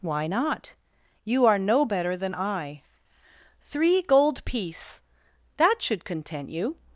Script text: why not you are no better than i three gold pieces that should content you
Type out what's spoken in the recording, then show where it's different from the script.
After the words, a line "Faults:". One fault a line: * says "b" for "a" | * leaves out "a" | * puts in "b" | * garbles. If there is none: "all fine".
why not you are no better than i three gold piece that should content you
Faults:
* says "piece" for "pieces"